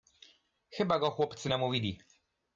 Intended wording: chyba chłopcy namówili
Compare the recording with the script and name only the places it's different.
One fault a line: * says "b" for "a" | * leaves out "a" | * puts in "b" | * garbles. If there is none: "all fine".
* puts in "go"